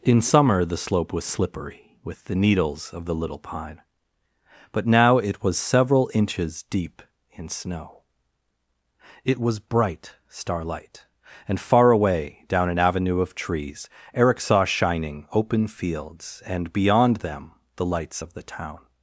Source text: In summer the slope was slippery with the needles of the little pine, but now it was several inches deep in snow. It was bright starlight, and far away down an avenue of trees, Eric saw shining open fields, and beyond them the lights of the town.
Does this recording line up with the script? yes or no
yes